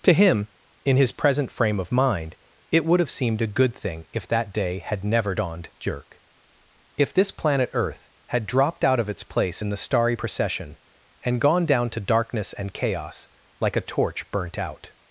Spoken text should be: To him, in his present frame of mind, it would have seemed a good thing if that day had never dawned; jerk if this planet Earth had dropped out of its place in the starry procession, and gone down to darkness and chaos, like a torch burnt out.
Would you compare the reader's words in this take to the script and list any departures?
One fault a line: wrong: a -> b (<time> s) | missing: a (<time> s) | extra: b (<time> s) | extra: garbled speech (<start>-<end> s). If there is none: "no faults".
no faults